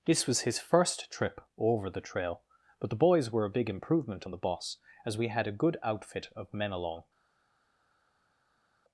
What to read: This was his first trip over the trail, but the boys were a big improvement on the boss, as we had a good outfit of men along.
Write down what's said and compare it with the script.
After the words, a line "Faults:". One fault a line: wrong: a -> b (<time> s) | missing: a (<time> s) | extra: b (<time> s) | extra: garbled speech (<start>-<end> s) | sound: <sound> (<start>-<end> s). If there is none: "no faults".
This was his first trip over the trail, but the boys were a big improvement on the boss, as we had a good outfit of men along.
Faults:
no faults